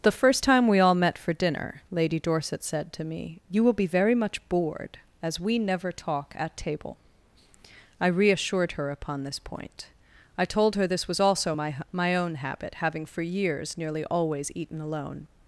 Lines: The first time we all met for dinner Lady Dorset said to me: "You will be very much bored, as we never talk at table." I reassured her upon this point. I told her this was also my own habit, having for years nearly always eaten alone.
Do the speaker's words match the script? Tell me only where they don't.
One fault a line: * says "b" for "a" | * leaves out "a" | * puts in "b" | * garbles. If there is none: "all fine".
* puts in "my"